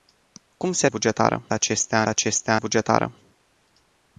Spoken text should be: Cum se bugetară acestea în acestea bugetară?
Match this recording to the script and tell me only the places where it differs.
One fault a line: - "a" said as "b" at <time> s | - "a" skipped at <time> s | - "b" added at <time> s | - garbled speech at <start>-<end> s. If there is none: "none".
none